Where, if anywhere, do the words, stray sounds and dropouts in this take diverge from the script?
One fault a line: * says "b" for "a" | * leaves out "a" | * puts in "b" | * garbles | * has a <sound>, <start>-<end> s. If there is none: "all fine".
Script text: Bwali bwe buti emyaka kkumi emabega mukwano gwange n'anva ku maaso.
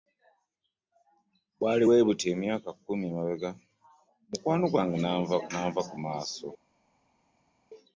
all fine